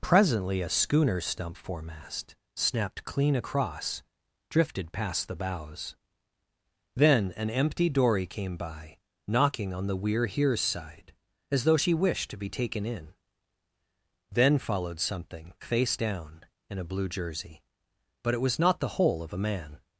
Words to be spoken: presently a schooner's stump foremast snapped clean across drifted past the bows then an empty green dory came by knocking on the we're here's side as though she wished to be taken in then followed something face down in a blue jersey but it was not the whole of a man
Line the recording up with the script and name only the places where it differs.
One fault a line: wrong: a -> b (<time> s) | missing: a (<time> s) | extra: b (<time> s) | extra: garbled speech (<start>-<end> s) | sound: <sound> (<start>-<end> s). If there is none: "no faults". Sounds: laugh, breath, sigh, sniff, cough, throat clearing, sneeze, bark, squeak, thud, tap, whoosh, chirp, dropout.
missing: green (7.9 s)